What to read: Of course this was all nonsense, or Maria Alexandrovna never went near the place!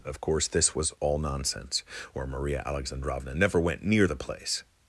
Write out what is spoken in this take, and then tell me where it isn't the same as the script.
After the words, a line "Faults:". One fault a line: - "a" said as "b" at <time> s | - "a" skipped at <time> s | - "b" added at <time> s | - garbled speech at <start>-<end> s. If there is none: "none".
Of course this was all nonsense, or Maria Alexandrovna never went near the place!
Faults:
none